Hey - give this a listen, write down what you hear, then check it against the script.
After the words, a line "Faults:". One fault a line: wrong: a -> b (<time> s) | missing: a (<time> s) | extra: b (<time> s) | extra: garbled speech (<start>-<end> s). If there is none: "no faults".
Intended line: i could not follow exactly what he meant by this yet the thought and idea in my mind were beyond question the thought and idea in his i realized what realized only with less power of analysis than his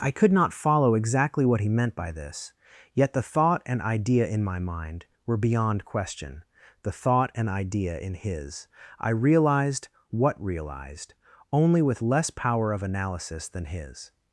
i could not follow exactly what he meant by this yet the thought and idea in my mind were beyond question the thought and idea in his i realized what realized only with less power of analysis than his
Faults:
no faults